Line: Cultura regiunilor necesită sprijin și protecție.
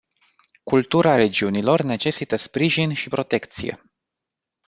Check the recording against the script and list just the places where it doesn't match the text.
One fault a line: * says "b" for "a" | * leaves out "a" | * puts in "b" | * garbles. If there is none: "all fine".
all fine